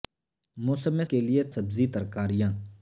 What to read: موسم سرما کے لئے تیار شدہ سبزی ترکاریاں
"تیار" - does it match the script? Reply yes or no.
no